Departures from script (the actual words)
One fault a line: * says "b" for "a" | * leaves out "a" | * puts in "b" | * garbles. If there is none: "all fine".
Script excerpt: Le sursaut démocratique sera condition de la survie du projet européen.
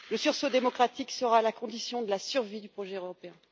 * puts in "la"